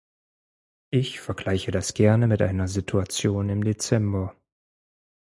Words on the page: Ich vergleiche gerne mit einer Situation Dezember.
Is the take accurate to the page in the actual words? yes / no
no